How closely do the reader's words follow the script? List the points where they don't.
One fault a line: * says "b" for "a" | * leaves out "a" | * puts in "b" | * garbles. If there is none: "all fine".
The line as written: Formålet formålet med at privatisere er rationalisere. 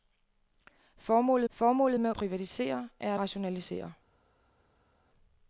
all fine